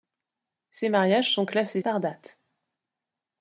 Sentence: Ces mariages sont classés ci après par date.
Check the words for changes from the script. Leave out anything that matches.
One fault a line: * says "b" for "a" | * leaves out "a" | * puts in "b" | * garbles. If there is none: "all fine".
* leaves out "ci après"